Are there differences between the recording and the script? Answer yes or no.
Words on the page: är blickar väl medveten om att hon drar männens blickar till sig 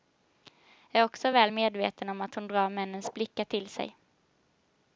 yes